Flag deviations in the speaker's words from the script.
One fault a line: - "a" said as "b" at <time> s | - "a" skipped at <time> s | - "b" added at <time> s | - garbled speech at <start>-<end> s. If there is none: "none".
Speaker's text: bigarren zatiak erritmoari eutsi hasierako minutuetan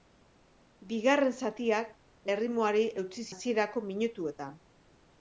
none